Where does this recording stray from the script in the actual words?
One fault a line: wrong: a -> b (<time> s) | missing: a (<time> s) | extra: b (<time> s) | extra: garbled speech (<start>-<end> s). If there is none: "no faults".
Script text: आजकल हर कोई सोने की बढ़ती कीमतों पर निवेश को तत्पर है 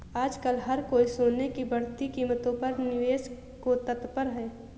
no faults